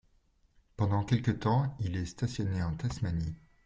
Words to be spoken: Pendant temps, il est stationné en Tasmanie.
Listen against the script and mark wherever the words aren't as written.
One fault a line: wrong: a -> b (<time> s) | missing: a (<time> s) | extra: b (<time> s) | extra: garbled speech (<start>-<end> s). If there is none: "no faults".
extra: quelque (1.0 s)